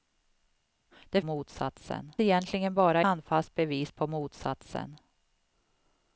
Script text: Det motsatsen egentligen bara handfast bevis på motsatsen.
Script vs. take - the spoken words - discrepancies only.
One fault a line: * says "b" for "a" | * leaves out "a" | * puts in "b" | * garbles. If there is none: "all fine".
all fine